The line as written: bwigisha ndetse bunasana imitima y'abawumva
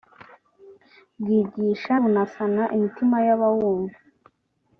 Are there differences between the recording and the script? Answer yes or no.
yes